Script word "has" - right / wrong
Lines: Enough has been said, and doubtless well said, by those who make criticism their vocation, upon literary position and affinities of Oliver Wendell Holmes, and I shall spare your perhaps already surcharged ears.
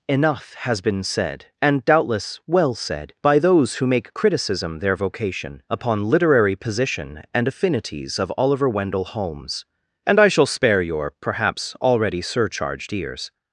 right